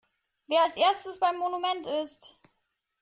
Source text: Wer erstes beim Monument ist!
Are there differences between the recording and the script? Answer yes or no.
yes